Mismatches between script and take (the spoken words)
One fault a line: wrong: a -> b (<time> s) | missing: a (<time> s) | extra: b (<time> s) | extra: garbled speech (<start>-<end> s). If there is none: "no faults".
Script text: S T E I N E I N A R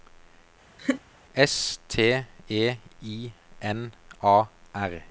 missing: E I N (3.9 s)